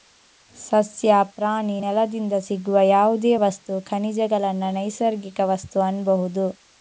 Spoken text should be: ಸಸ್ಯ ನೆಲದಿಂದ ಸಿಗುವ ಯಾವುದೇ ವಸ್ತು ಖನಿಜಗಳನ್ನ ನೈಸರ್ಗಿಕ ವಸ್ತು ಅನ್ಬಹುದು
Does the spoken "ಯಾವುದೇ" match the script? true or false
true